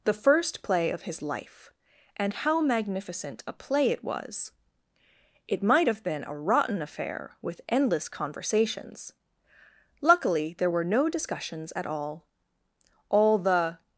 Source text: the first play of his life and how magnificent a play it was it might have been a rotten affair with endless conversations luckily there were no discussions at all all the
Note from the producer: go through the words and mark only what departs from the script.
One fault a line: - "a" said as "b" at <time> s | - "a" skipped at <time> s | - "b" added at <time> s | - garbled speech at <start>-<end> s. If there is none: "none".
none